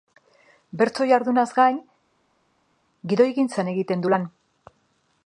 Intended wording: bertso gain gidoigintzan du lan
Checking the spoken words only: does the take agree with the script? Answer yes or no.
no